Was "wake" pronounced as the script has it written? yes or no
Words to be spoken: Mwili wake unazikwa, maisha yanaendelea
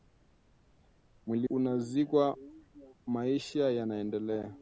no